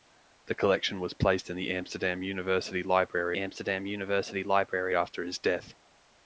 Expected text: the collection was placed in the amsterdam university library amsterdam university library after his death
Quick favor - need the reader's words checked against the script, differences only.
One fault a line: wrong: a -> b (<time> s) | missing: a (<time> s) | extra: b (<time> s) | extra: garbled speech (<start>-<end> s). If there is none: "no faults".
no faults